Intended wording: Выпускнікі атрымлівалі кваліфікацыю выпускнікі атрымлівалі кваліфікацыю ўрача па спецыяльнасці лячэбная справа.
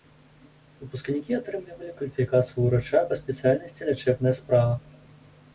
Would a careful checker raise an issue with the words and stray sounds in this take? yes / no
yes